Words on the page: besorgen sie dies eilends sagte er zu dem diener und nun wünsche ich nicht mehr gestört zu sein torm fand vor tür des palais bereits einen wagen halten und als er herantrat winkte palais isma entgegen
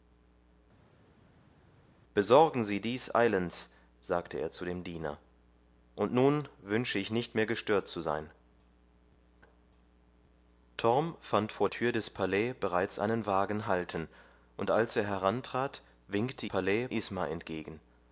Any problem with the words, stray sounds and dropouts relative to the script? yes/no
no